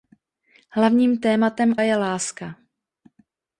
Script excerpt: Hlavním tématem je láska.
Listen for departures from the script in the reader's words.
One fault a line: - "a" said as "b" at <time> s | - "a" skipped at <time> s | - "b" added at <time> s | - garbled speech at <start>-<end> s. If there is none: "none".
none